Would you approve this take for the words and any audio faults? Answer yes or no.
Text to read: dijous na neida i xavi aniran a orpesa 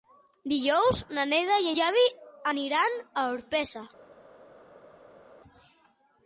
yes